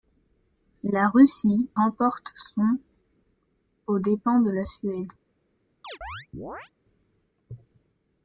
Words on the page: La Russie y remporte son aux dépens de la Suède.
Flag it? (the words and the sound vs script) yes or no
yes